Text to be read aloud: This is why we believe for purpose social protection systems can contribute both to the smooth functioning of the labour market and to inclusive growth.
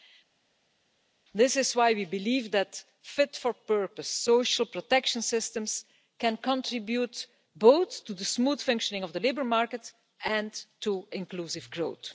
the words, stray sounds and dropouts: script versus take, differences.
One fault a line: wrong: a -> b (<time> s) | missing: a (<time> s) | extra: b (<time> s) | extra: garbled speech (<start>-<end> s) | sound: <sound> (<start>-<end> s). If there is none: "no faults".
extra: that fit (2.5 s)